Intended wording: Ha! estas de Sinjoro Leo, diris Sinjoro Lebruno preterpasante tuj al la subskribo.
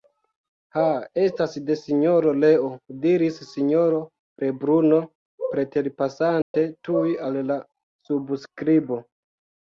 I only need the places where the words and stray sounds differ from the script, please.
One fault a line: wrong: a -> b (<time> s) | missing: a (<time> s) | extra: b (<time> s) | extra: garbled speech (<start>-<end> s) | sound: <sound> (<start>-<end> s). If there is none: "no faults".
sound: dropout (6.4-6.5 s)